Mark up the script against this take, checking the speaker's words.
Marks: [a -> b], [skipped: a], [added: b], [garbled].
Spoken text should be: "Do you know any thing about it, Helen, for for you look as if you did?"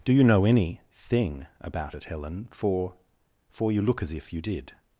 "Do you know any thing about it, Helen, for for you look as if you did?"